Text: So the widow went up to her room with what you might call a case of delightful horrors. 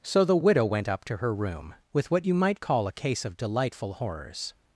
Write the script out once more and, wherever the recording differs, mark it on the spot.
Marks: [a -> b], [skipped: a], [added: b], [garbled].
So the widow went up to her room with what you might call a case of delightful horrors.